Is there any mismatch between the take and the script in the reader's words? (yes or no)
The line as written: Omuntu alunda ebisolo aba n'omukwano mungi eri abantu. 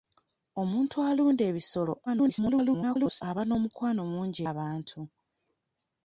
yes